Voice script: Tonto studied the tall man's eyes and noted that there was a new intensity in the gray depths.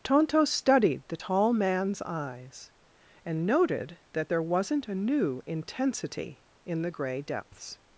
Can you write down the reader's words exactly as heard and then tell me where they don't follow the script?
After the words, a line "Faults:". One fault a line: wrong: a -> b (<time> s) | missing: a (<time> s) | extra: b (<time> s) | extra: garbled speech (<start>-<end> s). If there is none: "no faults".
Tonto studied the tall man's eyes and noted that there wasn't a new intensity in the gray depths.
Faults:
wrong: was -> wasn't (4.4 s)